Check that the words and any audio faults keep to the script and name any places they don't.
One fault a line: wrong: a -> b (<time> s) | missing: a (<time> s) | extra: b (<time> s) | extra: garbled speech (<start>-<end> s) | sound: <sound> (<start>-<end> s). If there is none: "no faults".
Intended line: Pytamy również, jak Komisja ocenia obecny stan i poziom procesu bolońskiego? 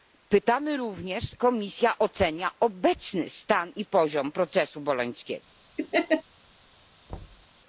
missing: jak (1.2 s)
sound: laugh (5.8-6.2 s)
sound: thud (7.1-7.5 s)